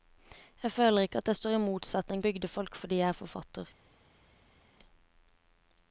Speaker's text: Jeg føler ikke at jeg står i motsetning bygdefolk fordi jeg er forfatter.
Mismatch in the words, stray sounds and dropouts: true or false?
false